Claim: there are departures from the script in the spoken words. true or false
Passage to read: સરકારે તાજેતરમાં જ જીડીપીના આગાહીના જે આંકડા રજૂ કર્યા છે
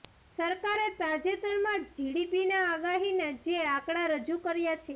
false